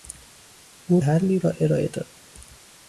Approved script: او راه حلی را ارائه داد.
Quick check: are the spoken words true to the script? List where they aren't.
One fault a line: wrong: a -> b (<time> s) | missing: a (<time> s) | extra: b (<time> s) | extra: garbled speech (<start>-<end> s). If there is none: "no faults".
missing: راه (1.0 s)